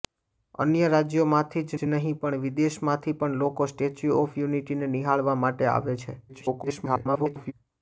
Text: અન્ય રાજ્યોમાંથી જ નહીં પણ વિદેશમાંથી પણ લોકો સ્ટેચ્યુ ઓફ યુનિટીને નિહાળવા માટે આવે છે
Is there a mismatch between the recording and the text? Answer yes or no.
yes